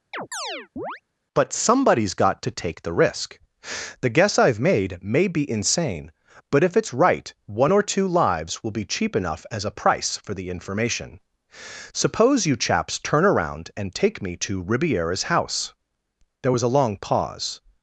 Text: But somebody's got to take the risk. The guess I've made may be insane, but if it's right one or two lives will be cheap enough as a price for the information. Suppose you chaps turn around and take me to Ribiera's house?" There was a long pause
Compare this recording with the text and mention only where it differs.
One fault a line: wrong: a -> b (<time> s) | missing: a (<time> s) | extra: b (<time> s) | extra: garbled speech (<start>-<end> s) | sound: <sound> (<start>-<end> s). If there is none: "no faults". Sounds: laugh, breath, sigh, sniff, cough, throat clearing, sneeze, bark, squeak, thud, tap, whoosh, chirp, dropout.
sound: chirp (0.1-1.0 s)